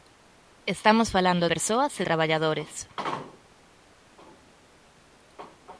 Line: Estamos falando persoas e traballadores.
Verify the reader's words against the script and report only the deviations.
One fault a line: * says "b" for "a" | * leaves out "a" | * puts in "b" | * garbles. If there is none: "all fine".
all fine